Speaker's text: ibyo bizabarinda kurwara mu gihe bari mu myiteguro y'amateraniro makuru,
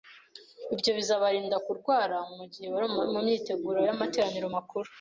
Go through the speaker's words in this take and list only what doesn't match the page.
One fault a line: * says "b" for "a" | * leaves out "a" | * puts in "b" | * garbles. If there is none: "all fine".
all fine